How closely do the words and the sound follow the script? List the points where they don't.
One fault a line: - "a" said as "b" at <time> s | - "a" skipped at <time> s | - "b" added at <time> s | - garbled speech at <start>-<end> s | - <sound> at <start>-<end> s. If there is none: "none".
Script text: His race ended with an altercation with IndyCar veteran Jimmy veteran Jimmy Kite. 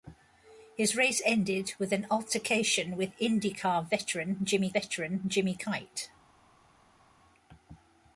none